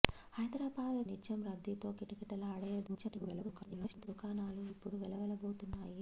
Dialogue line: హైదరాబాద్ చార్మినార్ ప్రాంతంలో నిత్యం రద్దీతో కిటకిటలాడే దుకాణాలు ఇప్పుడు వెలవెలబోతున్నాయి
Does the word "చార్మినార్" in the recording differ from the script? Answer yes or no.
yes